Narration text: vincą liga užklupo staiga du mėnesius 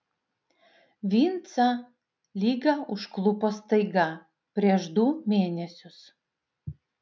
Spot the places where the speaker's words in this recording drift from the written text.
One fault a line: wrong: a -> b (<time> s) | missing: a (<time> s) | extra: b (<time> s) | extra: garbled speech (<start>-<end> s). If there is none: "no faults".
extra: prieš (4.6 s)